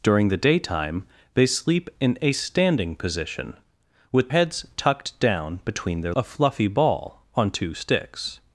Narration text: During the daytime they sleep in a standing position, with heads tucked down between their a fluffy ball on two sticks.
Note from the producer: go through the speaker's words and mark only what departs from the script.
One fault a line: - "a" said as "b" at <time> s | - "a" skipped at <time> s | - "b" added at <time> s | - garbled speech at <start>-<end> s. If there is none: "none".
none